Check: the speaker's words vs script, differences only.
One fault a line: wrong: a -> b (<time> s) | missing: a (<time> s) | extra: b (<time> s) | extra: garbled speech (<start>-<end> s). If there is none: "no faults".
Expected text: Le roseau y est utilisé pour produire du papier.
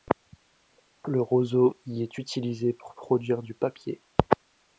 no faults